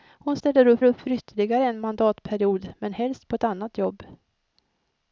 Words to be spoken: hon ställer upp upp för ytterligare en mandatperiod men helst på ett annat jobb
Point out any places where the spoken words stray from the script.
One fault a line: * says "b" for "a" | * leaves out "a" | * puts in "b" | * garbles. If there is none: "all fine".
all fine